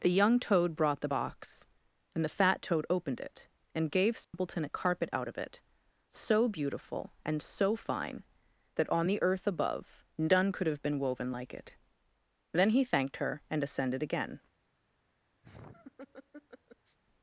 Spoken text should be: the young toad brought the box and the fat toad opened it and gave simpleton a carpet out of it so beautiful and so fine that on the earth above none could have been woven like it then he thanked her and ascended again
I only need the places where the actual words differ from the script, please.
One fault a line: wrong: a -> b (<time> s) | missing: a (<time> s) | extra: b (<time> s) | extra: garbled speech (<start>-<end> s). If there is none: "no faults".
no faults